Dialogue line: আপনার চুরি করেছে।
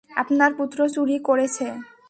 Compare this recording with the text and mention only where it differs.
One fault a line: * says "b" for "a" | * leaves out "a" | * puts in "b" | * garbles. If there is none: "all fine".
* puts in "পুত্র"